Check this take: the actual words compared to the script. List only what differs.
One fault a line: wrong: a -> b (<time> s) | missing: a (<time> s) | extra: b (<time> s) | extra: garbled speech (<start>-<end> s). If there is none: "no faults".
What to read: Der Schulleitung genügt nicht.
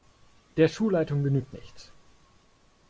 no faults